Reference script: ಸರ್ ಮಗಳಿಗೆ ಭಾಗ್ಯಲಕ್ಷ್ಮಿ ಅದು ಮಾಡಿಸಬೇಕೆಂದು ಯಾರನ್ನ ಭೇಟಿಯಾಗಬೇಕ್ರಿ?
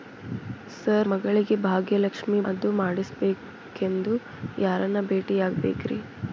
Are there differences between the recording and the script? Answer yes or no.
no